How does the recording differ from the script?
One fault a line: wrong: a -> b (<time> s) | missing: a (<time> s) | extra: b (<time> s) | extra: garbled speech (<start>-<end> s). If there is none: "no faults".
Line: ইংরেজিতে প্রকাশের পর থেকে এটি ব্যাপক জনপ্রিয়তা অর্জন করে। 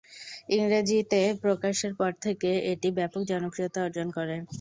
no faults